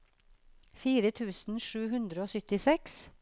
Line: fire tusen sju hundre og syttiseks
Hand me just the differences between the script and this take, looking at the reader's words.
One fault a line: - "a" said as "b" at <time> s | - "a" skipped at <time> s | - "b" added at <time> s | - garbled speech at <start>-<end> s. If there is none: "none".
none